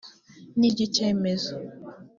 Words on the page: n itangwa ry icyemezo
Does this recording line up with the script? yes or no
no